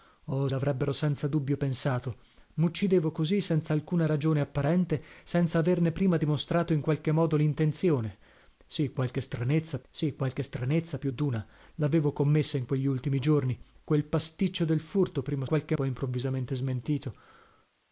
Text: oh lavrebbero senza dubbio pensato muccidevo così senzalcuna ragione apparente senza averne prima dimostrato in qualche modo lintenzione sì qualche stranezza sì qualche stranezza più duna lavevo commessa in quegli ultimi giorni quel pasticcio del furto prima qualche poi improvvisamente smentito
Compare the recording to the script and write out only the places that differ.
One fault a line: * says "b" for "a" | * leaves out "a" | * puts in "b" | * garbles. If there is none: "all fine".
all fine